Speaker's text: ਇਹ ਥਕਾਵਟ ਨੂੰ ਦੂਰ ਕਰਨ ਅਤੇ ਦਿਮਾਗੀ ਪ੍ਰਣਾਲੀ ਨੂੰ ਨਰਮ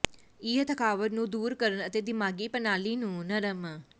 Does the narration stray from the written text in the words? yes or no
no